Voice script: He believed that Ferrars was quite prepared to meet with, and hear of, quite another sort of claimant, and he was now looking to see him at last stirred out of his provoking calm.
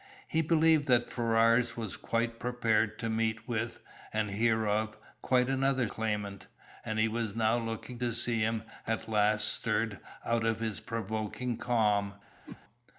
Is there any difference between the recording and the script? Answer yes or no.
yes